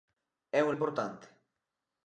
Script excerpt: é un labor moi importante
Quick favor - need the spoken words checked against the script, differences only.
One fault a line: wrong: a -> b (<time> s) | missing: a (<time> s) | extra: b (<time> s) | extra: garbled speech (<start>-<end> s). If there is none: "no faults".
missing: labor moi (0.7 s)